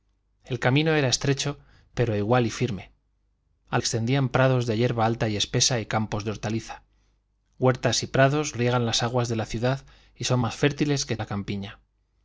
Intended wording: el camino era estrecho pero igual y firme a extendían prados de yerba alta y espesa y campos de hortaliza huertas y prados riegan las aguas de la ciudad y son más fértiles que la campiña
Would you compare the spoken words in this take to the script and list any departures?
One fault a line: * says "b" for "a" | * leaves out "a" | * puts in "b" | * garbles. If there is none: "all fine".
all fine